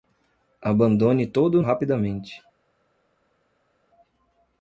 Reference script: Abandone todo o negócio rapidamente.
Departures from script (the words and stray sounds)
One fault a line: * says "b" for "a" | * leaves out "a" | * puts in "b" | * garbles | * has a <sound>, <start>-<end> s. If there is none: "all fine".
* leaves out "negócio"